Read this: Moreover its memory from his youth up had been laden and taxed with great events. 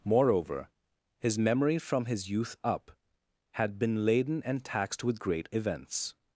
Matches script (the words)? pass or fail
fail